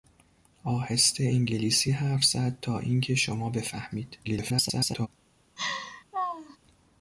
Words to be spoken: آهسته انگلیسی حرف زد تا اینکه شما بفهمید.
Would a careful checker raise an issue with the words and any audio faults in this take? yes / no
yes